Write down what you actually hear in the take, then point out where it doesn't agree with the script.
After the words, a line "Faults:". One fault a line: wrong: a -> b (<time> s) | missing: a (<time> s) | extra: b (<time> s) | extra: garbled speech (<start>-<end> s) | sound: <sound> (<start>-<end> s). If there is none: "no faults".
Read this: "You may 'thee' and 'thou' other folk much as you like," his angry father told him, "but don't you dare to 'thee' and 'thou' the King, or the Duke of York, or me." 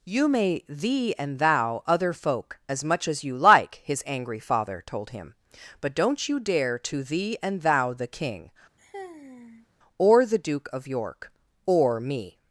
"You may 'thee' and 'thou' other folk as much as you like," his angry father told him, "but don't you dare to 'thee' and 'thou' the King, or the Duke of York, or me."
Faults:
extra: as (2.7 s)
sound: sigh (8.8-9.7 s)